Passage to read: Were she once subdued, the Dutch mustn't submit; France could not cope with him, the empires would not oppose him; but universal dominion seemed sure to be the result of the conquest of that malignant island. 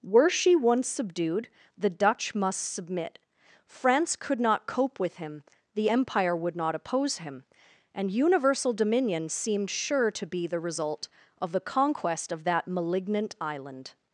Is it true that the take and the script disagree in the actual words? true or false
true